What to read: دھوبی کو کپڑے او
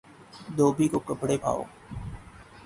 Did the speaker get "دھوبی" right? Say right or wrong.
right